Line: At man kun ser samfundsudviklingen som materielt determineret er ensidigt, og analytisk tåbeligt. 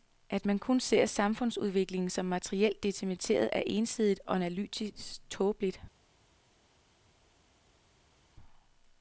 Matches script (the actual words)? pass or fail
pass